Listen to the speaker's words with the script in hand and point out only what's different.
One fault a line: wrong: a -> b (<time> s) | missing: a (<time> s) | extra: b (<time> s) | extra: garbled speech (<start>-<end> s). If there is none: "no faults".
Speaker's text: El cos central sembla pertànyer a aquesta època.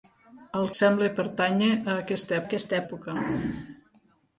missing: cos central (0.6 s)
extra: aquesta (2.5 s)